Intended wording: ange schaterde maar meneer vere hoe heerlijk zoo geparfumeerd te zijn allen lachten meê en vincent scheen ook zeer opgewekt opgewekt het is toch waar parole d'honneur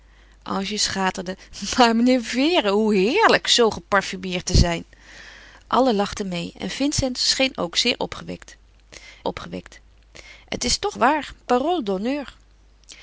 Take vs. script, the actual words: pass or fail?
pass